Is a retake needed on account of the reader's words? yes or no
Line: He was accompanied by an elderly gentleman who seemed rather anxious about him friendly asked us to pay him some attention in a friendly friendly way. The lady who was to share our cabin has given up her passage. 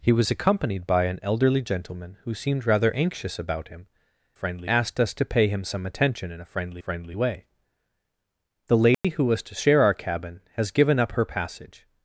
no